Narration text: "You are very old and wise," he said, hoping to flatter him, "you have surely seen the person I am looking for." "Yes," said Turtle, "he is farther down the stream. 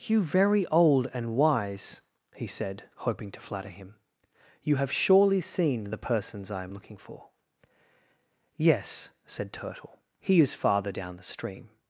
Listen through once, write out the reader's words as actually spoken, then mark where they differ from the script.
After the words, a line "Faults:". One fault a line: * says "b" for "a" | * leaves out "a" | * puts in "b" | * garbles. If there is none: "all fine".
"You very old and wise," he said, hoping to flatter him, "you have surely seen the persons I am looking for." "Yes," said Turtle, "he is farther down the stream.
Faults:
* leaves out "are"
* says "persons" for "person"